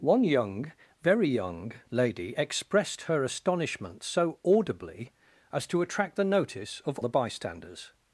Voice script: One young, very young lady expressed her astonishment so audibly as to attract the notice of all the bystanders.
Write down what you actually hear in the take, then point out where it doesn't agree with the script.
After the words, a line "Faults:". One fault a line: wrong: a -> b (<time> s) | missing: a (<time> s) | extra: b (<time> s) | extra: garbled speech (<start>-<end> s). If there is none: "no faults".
One young, very young lady expressed her astonishment so audibly as to attract the notice of the bystanders.
Faults:
missing: all (7.0 s)